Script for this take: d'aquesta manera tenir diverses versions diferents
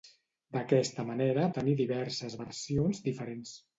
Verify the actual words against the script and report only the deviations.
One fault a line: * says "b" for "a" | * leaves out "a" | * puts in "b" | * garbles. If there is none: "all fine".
all fine